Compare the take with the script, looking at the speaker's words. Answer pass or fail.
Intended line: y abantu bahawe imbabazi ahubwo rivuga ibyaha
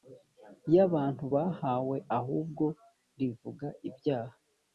fail